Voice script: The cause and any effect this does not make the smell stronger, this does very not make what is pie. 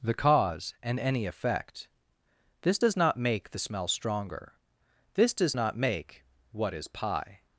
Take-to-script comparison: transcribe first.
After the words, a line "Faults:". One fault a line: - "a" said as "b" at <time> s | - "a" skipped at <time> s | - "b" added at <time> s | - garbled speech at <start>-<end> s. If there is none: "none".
The cause and any effect this does not make the smell stronger, this does not make what is pie.
Faults:
- "very" skipped at 5.5 s